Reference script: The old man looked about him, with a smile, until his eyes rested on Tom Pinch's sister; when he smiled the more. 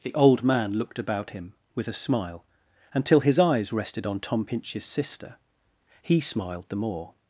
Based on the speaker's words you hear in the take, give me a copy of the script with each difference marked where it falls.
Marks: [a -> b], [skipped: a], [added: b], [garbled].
The old man looked about him, with a smile, until his eyes rested on Tom Pinch's sister; [skipped: when] he smiled the more.